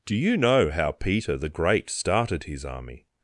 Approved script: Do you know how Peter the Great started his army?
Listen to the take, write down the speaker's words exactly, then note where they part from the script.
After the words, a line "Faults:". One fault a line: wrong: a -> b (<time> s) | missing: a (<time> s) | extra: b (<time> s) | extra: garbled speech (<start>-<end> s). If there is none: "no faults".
Do you know how Peter the Great started his army?
Faults:
no faults